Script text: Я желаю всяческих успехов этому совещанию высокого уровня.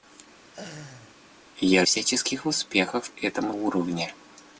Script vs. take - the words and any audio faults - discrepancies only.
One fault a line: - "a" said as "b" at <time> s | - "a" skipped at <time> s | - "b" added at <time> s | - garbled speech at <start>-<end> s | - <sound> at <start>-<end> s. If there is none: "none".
- laugh at 0.4-1.2 s
- "желаю" skipped at 1.9 s
- "совещанию высокого" skipped at 3.5 s